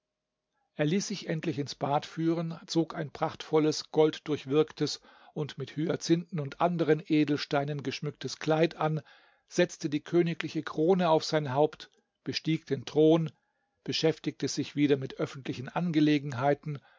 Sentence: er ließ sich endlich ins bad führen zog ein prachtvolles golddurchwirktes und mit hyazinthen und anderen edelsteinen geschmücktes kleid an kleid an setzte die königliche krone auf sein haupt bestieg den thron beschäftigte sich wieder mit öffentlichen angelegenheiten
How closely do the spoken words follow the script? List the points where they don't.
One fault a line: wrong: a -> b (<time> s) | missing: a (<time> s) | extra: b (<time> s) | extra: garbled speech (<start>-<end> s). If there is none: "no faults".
missing: kleid an (9.0 s)